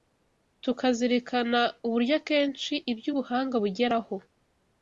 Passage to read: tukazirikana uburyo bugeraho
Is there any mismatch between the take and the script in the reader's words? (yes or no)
yes